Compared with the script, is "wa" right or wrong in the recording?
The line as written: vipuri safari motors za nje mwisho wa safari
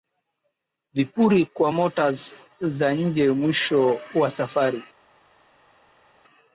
right